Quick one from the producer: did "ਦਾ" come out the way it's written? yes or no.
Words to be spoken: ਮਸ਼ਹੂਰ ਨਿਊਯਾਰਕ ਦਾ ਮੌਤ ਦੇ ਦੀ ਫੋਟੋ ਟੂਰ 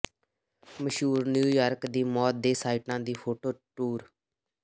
no